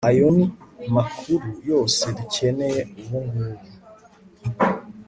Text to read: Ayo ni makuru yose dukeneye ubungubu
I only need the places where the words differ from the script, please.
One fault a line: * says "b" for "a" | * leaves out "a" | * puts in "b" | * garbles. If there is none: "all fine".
all fine